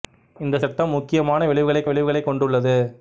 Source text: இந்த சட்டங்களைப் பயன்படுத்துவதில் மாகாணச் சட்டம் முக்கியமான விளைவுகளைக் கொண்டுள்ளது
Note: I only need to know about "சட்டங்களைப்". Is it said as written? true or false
false